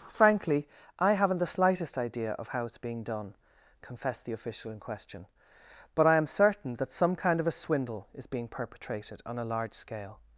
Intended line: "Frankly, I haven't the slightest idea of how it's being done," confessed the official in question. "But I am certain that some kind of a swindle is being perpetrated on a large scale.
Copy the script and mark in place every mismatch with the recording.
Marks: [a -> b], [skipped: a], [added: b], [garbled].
"Frankly, I haven't the slightest idea of how it's being done," confessed the official in question. "But I am certain that some kind of a swindle is being perpetrated on a large scale.